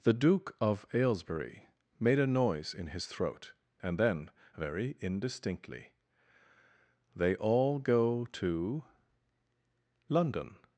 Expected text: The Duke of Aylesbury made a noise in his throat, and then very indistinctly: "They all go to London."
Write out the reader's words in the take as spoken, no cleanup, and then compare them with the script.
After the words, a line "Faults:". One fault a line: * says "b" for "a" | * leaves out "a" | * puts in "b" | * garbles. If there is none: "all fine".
The Duke of Aylesbury made a noise in his throat, and then very indistinctly: "They all go to London."
Faults:
all fine